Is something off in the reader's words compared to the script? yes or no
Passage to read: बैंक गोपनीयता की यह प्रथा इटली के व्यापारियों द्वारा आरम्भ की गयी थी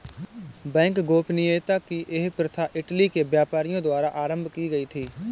no